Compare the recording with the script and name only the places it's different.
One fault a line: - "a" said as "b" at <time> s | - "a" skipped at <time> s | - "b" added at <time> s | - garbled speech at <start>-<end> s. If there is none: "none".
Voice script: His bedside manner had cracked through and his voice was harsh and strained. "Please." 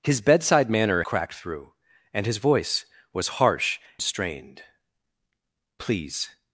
- "had" skipped at 1.0 s
- "and" skipped at 3.8 s